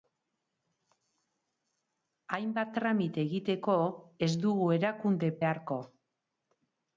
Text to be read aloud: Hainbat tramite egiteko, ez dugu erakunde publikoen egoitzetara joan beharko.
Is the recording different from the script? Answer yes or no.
yes